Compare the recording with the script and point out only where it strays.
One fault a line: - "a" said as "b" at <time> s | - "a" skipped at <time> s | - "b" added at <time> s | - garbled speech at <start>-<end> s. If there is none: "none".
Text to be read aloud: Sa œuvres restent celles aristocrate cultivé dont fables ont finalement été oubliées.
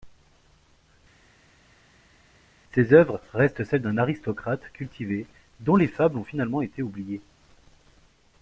- "Sa" said as "Ses" at 2.7 s
- "d'un" added at 3.8 s
- "les" added at 5.8 s